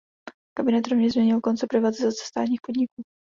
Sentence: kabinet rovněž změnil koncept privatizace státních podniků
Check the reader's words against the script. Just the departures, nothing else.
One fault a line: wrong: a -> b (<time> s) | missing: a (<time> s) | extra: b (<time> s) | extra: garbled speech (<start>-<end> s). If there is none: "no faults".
no faults